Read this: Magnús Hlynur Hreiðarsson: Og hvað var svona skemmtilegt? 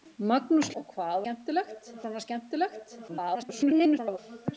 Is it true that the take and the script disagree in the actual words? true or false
true